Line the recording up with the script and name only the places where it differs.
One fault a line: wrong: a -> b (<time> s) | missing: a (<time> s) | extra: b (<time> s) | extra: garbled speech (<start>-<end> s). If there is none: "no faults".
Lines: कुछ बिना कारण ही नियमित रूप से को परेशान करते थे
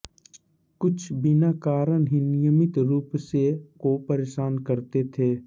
no faults